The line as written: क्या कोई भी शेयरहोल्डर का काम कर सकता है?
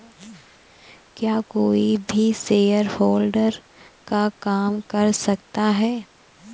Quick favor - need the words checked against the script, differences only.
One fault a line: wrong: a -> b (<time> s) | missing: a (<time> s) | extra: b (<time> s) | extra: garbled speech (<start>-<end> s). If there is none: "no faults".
no faults